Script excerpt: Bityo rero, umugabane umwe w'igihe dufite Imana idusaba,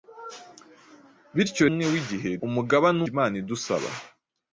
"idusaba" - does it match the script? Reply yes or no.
yes